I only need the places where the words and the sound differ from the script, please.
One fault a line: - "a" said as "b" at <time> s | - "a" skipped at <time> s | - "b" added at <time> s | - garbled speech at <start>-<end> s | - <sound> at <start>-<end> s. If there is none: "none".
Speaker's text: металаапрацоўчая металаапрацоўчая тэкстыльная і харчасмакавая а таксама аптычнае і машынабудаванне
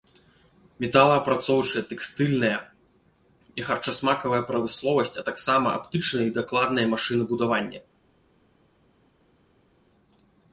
- "металаапрацоўчая" skipped at 1.8 s
- "прамысловасць" added at 4.5 s
- "дакладнае" added at 6.4 s